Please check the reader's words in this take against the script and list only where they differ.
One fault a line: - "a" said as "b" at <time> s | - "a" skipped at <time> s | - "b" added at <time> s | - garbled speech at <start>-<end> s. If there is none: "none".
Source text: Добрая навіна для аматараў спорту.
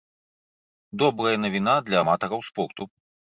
none